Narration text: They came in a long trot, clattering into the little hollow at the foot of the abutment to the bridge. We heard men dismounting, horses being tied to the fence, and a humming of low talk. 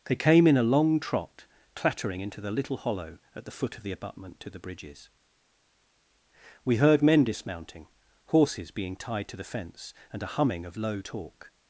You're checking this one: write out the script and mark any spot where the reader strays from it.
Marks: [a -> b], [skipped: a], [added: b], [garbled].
They came in a long trot, clattering into the little hollow at the foot of the abutment to the [bridge. -> bridges] We heard men dismounting, horses being tied to the fence, and a humming of low talk.